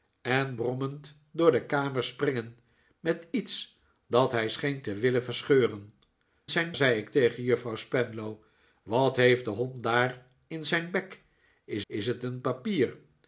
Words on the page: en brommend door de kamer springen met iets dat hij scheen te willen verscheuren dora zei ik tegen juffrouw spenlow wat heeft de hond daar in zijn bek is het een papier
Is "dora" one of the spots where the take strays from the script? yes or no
yes